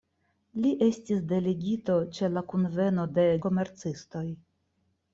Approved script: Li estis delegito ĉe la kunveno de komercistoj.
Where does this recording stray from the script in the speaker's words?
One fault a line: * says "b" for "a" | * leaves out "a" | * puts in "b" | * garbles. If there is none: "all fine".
all fine